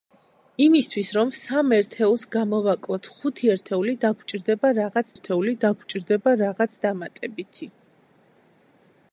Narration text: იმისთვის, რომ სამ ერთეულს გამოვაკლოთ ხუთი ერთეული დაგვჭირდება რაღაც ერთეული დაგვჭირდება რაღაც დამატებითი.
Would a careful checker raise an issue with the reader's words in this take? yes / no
no